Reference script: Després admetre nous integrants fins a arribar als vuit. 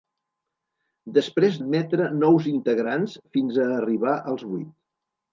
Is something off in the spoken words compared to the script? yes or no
no